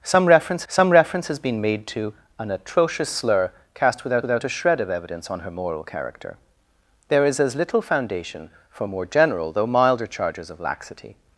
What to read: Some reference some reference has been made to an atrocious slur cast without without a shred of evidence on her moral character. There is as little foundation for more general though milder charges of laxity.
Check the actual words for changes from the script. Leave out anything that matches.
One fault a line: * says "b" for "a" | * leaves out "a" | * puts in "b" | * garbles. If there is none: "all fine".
all fine